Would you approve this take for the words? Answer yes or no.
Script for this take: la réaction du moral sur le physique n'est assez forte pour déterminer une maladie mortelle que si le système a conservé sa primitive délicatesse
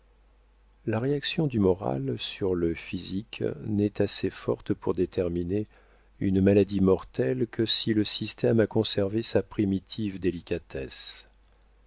yes